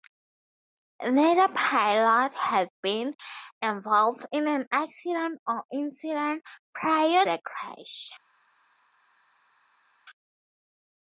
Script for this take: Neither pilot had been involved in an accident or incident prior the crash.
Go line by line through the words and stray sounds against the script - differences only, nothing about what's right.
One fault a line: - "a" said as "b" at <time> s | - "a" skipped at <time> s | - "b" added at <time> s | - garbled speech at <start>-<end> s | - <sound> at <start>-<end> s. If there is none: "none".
none